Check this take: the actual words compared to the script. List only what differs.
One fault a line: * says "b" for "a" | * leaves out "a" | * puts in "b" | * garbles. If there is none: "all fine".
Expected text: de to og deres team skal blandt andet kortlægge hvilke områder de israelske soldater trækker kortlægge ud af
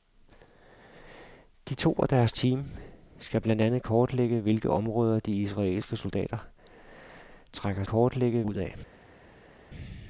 all fine